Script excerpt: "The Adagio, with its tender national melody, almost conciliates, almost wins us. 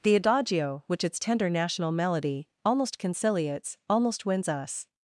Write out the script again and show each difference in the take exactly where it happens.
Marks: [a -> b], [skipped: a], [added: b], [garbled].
"The Adagio, [with -> which] its tender national melody, almost conciliates, almost wins us.